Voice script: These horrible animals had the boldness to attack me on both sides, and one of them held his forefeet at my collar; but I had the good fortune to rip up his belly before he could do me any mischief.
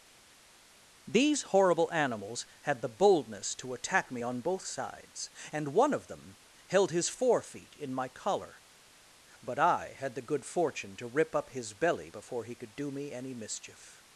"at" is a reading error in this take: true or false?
true